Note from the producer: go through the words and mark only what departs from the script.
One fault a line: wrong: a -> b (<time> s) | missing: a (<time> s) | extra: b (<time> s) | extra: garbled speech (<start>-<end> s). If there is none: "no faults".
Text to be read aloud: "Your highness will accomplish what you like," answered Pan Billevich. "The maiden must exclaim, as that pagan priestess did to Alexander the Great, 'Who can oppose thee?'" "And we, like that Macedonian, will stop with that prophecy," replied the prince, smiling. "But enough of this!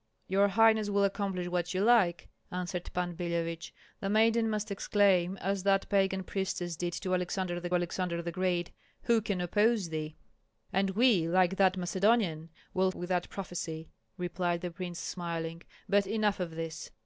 extra: Alexander the (7.7 s)
missing: stop (12.9 s)